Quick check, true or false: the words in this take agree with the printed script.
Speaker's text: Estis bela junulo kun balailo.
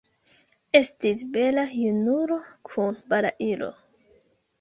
true